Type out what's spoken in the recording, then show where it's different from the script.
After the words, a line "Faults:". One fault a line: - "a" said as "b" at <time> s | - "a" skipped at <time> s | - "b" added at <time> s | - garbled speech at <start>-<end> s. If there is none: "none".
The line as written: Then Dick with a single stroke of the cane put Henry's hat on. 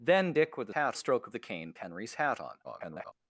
Then Dick with a hat stroke of the cane Henry's hat on. [garbled]
Faults:
- "single" said as "hat" at 0.7 s
- "put" skipped at 1.7 s
- garbled speech at 2.6-3.1 s